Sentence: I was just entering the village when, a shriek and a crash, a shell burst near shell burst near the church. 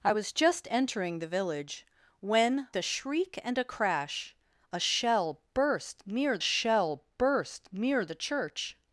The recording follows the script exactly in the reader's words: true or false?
true